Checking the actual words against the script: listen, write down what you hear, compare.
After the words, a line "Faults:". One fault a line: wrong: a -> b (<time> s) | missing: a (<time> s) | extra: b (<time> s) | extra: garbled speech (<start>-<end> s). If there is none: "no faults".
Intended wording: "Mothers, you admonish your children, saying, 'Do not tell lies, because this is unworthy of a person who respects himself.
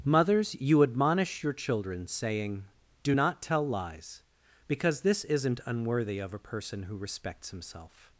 "Mothers, you admonish your children, saying, 'Do not tell lies, because this isn't unworthy of a person who respects himself.
Faults:
wrong: is -> isn't (5.2 s)